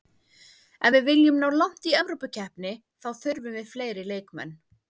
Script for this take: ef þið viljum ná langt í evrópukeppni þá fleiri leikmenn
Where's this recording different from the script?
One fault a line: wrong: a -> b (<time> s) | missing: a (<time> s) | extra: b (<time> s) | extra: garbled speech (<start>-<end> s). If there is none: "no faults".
wrong: þið -> við (0.9 s)
extra: þurfum við (3.2 s)